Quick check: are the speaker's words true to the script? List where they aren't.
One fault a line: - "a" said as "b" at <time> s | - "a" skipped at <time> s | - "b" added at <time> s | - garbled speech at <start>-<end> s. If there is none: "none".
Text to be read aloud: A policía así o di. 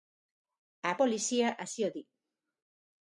none